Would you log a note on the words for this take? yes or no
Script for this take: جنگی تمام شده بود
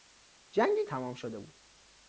no